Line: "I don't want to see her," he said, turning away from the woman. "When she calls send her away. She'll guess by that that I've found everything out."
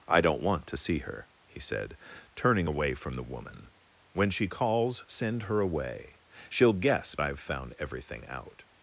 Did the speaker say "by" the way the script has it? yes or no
no